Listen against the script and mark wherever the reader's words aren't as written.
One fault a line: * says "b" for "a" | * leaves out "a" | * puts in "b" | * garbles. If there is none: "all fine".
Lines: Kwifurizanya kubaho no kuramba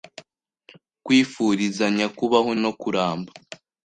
all fine